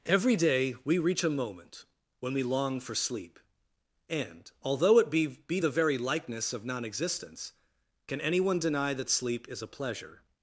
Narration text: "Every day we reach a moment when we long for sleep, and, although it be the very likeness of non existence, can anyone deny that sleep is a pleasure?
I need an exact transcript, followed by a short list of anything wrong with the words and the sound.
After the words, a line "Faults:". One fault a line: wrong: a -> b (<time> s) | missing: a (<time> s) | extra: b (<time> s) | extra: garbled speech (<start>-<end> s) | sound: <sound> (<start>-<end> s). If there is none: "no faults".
"Every day we reach a moment when we long for sleep, and, although it be be the very likeness of non existence, can anyone deny that sleep is a pleasure?
Faults:
extra: be (5.3 s)